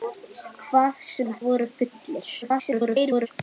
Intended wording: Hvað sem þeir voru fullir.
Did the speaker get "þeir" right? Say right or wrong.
wrong